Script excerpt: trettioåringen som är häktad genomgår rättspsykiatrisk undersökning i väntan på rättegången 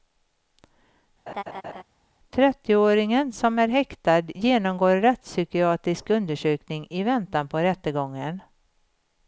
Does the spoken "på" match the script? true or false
true